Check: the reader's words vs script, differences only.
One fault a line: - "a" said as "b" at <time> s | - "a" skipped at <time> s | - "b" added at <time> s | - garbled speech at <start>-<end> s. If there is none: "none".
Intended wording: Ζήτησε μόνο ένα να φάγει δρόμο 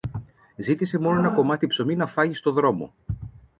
- "κομμάτι ψωμί" added at 1.3 s
- "στο" added at 2.3 s